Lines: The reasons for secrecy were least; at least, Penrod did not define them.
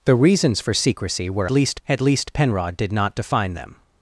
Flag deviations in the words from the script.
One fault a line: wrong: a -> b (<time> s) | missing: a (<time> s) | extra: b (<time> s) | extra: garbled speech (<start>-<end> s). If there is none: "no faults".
no faults